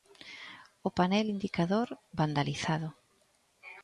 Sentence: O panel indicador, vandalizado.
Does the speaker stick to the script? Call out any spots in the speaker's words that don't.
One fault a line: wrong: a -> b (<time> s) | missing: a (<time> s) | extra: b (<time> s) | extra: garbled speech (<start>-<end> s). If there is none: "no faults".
no faults